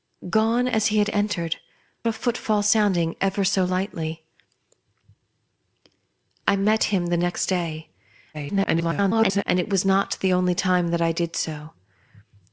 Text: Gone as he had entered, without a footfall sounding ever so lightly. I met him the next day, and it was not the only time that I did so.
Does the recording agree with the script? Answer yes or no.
no